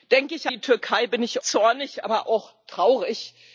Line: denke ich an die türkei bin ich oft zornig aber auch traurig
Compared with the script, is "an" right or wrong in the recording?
wrong